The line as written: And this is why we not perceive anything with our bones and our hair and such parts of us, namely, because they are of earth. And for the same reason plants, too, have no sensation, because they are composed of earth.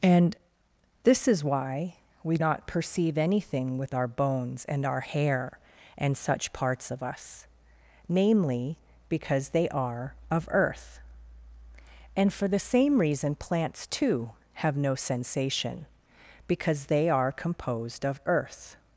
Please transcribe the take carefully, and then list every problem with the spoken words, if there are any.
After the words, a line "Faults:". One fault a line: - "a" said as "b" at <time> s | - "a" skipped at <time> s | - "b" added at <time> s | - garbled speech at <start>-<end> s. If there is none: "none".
And this is why we not perceive anything with our bones and our hair and such parts of us, namely, because they are of earth. And for the same reason plants, too, have no sensation, because they are composed of earth.
Faults:
none